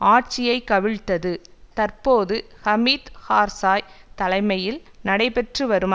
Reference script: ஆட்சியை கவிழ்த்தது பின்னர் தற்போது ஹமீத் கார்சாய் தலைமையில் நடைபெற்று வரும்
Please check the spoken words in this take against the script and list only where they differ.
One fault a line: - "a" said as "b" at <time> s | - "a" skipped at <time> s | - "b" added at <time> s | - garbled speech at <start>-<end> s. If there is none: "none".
- "பின்னர்" skipped at 1.3 s